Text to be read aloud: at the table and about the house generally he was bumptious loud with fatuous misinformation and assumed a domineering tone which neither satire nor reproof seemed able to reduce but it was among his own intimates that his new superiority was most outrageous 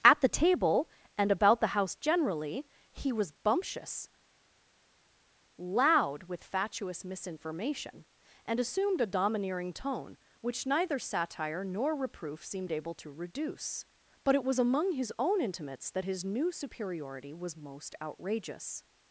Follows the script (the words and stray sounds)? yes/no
yes